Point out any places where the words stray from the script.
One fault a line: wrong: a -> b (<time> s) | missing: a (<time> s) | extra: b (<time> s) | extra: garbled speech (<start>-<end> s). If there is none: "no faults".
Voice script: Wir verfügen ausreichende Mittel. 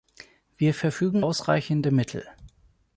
no faults